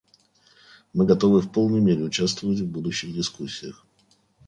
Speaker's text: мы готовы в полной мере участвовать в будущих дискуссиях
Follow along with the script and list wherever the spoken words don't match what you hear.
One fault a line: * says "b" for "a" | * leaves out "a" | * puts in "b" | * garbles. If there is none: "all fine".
all fine